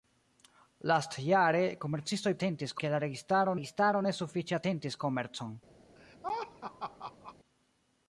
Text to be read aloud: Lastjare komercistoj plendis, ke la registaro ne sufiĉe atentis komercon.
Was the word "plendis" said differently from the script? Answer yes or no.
yes